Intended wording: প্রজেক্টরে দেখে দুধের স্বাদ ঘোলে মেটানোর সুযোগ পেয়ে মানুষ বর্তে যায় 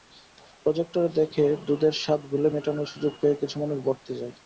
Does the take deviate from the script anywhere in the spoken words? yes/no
yes